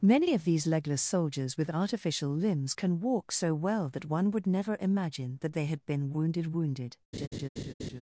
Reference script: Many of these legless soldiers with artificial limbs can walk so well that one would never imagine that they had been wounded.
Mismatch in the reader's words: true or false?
true